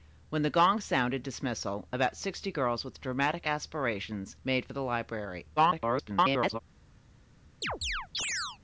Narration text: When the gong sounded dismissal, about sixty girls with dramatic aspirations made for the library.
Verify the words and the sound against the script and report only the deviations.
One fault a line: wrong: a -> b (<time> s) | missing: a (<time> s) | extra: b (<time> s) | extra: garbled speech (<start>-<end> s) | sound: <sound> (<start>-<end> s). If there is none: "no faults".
extra: garbled speech (5.6-6.6 s)
sound: chirp (7.6-8.6 s)